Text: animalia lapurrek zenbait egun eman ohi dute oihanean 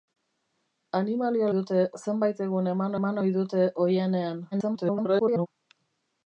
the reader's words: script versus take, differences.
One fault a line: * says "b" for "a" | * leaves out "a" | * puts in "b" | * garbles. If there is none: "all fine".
* says "dute" for "lapurrek"
* puts in "eman"
* garbles